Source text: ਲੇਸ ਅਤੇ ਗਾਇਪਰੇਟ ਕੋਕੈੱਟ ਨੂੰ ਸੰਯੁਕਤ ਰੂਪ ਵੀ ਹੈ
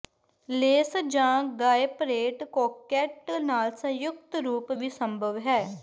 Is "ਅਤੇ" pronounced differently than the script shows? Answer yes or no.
yes